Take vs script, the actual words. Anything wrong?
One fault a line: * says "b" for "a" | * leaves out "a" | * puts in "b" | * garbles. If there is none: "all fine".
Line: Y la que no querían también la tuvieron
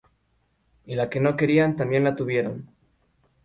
all fine